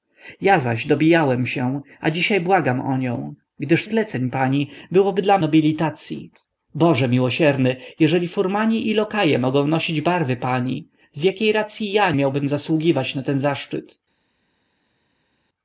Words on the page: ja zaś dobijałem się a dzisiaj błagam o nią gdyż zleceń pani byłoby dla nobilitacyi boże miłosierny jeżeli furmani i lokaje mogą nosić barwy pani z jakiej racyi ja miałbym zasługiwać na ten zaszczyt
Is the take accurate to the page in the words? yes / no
yes